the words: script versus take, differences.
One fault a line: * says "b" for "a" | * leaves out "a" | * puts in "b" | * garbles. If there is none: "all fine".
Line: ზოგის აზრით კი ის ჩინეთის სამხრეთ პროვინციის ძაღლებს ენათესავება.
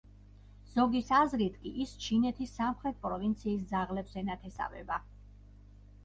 all fine